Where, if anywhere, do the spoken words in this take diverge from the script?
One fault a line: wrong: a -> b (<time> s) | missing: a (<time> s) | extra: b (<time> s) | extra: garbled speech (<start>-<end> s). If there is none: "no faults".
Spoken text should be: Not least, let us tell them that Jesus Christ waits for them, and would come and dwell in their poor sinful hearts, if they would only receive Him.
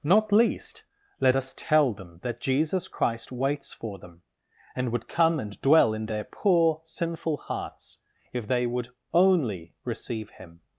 no faults